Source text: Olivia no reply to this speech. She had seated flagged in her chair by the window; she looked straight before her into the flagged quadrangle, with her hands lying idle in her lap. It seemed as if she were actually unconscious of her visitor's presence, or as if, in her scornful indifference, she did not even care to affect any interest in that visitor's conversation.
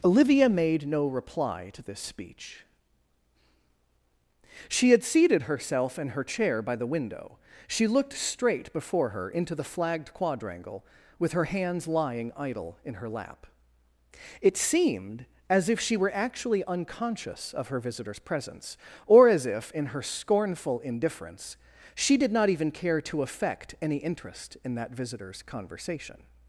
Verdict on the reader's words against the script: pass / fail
fail